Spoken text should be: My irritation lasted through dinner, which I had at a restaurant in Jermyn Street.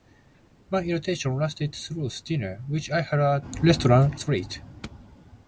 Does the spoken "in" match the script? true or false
false